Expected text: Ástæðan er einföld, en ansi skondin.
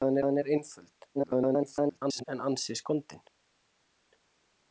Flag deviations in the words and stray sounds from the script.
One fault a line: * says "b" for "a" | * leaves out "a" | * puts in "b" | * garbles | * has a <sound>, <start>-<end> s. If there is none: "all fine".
* puts in "ástæðan"
* garbles